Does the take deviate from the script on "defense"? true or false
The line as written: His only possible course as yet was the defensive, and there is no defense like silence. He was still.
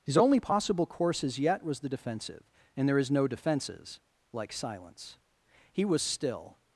true